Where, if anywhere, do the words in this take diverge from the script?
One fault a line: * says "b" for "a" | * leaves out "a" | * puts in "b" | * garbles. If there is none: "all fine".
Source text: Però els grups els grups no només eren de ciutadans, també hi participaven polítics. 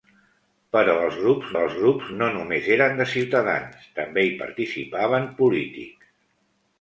all fine